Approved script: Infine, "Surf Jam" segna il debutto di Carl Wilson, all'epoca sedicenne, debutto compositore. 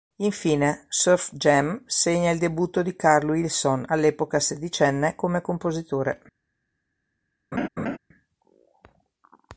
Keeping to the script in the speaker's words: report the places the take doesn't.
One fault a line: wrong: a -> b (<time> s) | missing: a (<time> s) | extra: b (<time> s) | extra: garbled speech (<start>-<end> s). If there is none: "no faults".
wrong: debutto -> come (5.1 s)